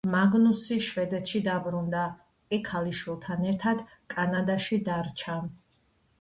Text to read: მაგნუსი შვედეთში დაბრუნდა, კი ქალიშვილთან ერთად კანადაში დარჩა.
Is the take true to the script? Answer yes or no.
yes